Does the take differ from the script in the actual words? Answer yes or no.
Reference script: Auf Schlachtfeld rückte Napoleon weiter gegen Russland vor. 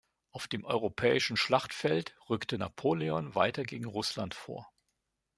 yes